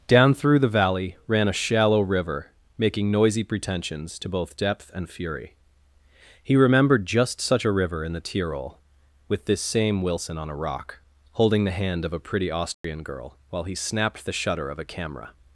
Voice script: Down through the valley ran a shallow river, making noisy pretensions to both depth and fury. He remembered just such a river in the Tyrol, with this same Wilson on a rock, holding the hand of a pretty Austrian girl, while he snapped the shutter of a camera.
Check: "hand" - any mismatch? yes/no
no